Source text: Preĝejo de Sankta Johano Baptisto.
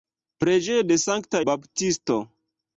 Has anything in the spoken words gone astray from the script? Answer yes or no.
yes